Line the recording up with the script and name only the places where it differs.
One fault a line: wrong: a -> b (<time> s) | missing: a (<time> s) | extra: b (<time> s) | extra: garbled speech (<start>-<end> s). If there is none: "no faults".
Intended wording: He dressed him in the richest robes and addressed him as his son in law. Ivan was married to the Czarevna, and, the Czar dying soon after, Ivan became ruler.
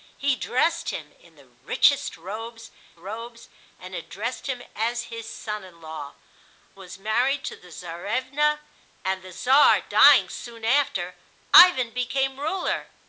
extra: robes (3.0 s)
missing: Ivan (6.1 s)